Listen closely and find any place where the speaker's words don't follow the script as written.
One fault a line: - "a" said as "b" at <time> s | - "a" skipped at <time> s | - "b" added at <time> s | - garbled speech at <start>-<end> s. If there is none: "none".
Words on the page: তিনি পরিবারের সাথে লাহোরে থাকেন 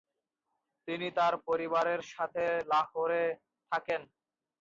- "তার" added at 1.2 s